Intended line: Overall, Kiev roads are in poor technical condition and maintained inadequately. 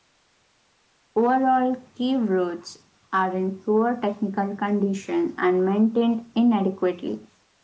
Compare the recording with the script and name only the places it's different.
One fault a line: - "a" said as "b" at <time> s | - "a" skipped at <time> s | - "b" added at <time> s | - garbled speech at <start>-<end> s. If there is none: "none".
none